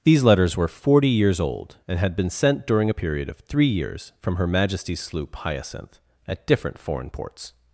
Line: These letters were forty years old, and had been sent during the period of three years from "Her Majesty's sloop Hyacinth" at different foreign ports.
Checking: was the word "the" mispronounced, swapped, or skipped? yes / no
yes